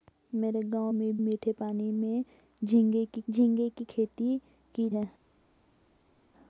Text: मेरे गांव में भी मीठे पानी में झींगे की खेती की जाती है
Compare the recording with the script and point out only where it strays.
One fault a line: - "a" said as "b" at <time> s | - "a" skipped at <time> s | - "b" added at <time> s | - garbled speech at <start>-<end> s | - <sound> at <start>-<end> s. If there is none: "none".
- "भी" skipped at 1.2 s
- "झींगे की" added at 3.3 s
- "जाती" skipped at 4.9 s